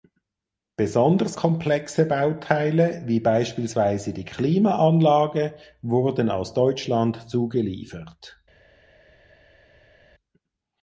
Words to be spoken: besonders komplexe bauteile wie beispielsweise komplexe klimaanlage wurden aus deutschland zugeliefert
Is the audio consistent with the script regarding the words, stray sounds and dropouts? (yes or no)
no